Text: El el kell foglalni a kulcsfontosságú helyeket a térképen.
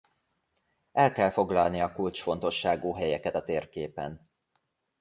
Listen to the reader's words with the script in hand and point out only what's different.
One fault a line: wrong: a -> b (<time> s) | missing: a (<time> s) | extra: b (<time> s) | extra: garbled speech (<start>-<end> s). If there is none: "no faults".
missing: el (1.1 s)